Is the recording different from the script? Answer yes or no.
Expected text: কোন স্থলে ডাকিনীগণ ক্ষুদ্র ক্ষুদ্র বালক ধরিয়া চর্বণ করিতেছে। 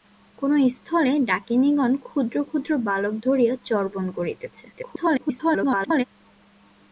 yes